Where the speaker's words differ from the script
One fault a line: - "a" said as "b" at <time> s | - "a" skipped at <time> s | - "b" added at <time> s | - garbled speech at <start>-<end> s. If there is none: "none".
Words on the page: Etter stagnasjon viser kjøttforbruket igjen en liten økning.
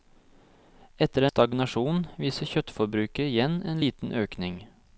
none